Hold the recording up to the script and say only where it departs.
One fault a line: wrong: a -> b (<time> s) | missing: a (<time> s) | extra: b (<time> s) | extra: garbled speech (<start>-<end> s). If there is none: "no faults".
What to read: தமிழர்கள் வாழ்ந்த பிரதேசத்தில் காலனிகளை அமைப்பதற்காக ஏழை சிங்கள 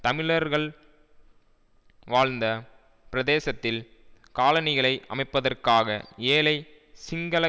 no faults